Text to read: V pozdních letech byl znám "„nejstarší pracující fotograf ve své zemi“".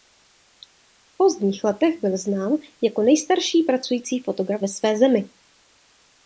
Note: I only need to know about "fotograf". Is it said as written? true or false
true